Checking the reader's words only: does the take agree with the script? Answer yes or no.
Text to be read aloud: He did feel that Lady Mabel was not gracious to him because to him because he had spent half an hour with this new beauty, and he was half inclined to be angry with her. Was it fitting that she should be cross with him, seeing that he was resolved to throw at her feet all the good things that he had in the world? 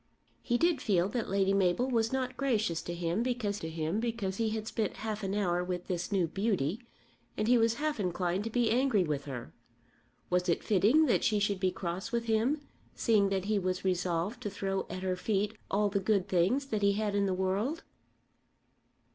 yes